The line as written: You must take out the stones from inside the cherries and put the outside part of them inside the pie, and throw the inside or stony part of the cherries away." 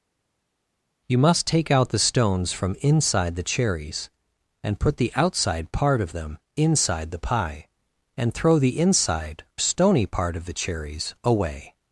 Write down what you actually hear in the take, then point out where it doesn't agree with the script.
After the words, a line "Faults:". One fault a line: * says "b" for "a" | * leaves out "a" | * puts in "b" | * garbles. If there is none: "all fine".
You must take out the stones from inside the cherries and put the outside part of them inside the pie, and throw the inside stony part of the cherries away."
Faults:
* leaves out "or"